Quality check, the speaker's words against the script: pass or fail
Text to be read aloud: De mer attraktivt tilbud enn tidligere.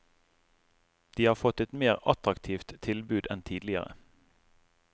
fail